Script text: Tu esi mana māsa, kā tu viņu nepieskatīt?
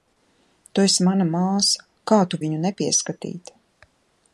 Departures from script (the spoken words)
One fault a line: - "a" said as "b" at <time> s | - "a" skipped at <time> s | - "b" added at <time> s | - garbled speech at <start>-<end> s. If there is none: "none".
none